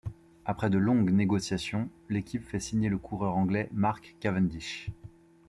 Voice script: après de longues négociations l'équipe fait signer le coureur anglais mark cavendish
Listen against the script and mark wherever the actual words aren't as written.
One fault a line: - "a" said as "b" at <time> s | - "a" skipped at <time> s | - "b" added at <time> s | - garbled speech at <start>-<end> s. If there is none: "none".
none